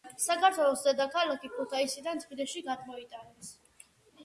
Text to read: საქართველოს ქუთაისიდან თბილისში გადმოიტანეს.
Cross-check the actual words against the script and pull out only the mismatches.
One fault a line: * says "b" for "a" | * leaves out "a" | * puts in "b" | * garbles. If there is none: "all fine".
* puts in "დედაქალაქი"